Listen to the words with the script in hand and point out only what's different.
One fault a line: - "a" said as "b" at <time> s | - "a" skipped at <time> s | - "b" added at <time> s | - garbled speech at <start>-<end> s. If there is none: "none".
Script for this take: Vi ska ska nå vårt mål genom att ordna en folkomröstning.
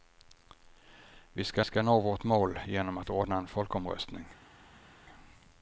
none